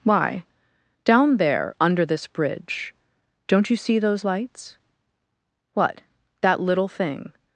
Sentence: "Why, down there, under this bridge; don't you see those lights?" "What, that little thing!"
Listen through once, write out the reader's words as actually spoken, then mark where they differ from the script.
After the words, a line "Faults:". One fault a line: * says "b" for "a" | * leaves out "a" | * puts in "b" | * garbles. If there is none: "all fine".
"Why, down there, under this bridge; don't you see those lights?" "What, that little thing!"
Faults:
all fine